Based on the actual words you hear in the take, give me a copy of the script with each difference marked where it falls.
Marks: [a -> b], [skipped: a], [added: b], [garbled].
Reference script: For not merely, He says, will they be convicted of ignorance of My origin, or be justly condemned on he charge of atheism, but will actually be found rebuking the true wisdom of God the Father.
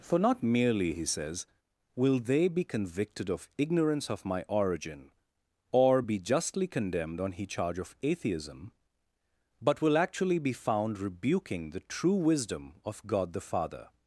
For not merely, He says, will they be convicted of ignorance of My origin, or be justly condemned on he charge of atheism, but will actually be found rebuking the true wisdom of God the Father.